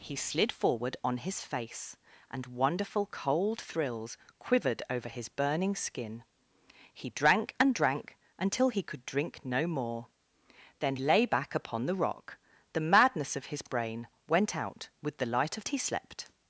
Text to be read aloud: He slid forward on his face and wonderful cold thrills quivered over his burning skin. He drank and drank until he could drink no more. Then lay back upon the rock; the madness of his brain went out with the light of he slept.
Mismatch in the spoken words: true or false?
false